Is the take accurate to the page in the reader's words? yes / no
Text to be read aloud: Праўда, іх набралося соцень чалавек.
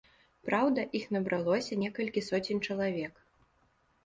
no